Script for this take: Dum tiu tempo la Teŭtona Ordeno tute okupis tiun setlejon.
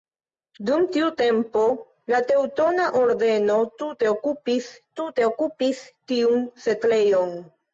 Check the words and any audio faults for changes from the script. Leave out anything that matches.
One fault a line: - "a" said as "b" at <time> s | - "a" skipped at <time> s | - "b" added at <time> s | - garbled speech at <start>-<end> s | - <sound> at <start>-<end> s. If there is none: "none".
- "tute okupis" added at 5.0 s